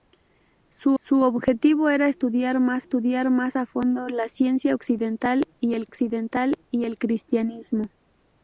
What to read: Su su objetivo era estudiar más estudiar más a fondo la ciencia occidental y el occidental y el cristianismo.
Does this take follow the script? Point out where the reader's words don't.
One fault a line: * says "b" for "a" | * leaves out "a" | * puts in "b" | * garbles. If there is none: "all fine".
all fine